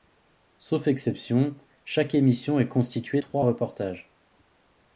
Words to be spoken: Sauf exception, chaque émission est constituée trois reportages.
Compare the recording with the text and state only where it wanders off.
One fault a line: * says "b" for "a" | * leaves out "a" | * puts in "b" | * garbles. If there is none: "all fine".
all fine